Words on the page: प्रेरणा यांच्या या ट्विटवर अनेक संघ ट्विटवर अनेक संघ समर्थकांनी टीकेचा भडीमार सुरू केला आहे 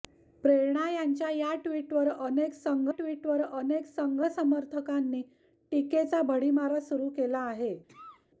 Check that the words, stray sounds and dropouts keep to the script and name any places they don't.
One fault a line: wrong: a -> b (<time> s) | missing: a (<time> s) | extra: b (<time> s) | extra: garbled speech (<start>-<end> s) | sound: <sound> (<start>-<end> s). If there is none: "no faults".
sound: cough (7.9-8.3 s)